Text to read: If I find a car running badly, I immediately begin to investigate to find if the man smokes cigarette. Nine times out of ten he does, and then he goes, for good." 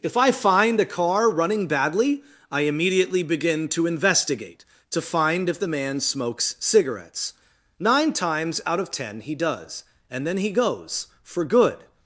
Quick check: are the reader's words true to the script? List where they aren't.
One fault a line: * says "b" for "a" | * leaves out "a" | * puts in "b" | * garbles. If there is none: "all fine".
* says "cigarettes" for "cigarette"